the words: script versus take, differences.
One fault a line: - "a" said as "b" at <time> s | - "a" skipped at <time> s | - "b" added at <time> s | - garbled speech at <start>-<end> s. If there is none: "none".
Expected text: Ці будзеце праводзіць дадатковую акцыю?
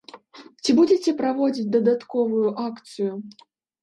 none